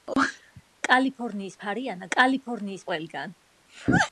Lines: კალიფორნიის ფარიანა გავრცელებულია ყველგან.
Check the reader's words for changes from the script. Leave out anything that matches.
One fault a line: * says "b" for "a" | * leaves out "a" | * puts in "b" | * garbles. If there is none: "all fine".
* says "კალიფორნიის" for "გავრცელებულია"